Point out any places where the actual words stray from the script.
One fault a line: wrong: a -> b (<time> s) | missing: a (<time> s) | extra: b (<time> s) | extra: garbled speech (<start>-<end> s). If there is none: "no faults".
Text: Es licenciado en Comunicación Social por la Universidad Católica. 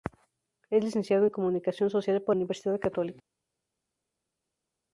missing: la (2.3 s)